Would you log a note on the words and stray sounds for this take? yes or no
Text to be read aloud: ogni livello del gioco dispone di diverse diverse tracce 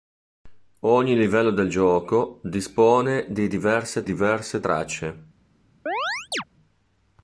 yes